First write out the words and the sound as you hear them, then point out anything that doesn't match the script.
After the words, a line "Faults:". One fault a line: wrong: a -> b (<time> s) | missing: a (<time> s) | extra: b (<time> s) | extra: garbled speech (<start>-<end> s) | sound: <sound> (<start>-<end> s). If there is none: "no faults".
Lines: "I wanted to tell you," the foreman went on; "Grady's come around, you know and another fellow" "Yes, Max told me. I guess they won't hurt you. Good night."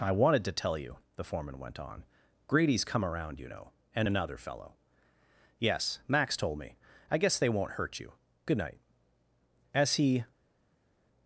"I wanted to tell you," the foreman went on; "Grady's come around, you know and another fellow" "Yes, Max told me. I guess they won't hurt you. Good night." As he
Faults:
extra: As he (9.7 s)